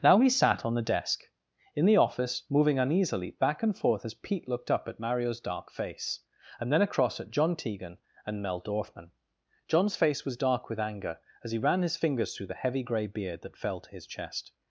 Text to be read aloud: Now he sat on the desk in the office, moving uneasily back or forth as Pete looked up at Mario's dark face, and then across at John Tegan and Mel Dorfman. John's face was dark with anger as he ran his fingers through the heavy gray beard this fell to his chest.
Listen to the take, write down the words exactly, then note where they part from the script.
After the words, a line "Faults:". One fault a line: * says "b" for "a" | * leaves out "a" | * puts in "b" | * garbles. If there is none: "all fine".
Now he sat on the desk in the office, moving uneasily back and forth as Pete looked up at Mario's dark face, and then across at John Tegan and Mel Dorfman. John's face was dark with anger as he ran his fingers through the heavy gray beard that fell to his chest.
Faults:
* says "and" for "or"
* says "that" for "this"